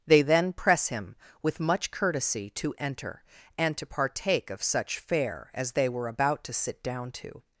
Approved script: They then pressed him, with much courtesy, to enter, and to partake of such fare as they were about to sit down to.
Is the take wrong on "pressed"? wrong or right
wrong